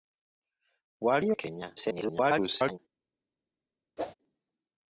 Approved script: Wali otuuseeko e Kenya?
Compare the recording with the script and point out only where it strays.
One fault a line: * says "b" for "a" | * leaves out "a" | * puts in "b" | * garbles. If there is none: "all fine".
* leaves out "otuuseeko"
* garbles